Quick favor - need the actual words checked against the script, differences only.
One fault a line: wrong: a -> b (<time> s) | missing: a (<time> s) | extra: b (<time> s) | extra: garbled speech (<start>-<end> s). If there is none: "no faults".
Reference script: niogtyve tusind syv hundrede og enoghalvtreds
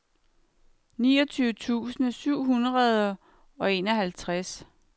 no faults